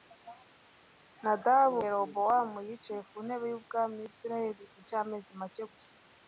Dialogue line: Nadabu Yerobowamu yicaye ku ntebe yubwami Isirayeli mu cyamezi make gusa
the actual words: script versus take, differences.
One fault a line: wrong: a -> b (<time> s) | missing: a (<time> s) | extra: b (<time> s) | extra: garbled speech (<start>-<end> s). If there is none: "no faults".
no faults